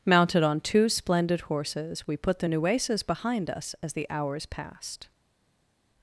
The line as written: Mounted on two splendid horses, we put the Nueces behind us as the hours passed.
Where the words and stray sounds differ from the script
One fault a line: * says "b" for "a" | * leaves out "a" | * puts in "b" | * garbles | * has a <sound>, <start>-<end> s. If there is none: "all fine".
all fine